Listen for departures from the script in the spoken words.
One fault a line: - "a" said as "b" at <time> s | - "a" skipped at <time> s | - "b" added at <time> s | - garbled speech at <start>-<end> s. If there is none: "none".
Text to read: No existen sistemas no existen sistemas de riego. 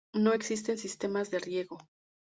- "no existen sistemas" skipped at 1.3 s